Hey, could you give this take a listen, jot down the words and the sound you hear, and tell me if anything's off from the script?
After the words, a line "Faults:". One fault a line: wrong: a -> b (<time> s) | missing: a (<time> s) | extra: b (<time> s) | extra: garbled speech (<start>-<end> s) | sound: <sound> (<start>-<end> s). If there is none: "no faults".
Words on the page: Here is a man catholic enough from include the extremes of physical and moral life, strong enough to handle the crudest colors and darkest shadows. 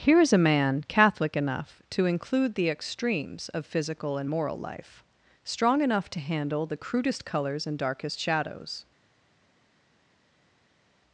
Here is a man catholic enough to include the extremes of physical and moral life, strong enough to handle the crudest colors and darkest shadows.
Faults:
wrong: from -> to (1.9 s)